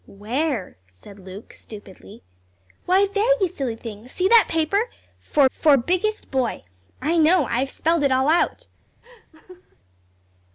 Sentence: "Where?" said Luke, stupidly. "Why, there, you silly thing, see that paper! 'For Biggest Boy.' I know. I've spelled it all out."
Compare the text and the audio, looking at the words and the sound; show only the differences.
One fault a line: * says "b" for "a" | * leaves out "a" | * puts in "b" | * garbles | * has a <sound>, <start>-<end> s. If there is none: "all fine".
* puts in "for"
* has a laugh, 9.0-9.8 s